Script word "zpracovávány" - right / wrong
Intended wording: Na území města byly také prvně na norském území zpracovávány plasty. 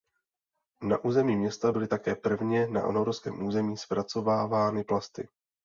right